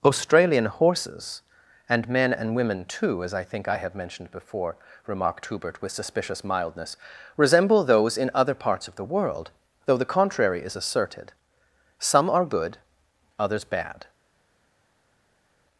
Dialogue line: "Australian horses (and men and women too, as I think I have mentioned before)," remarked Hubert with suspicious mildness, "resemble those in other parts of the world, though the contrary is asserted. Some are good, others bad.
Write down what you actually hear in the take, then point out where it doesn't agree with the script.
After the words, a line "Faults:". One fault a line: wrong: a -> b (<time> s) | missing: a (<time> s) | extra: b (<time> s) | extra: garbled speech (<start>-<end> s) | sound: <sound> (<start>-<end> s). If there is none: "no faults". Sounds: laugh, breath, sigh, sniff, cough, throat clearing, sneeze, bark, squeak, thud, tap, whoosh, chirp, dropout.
"Australian horses (and men and women too, as I think I have mentioned before)," remarked Hubert with suspicious mildness, "resemble those in other parts of the world, though the contrary is asserted. Some are good, others bad.
Faults:
no faults